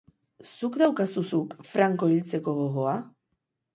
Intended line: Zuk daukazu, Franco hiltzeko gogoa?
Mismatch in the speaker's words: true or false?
true